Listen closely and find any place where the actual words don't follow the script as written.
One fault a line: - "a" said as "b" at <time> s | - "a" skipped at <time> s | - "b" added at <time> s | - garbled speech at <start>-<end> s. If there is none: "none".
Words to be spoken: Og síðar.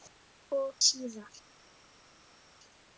none